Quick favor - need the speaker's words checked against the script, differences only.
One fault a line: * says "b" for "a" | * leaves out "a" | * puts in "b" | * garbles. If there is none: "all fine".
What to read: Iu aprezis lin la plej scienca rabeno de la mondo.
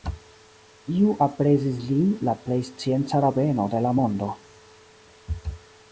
all fine